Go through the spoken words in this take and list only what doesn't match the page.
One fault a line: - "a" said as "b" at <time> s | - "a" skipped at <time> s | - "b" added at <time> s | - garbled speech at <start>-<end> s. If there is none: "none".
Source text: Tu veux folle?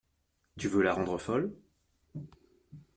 - "la rendre" added at 0.8 s